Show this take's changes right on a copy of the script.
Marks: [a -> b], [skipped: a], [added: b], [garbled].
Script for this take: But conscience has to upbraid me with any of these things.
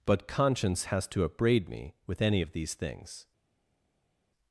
But conscience has to upbraid me with any of these things.